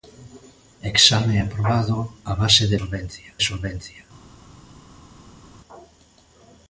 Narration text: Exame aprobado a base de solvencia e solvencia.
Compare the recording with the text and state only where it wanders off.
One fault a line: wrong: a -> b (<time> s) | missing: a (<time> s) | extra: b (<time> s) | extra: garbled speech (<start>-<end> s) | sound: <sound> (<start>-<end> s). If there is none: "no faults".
no faults